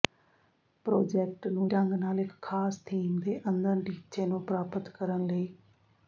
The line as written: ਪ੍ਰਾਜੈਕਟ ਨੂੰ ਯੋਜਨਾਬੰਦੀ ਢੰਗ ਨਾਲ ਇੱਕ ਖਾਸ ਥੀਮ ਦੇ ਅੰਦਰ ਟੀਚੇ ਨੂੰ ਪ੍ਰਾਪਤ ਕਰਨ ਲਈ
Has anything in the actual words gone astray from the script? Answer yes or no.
yes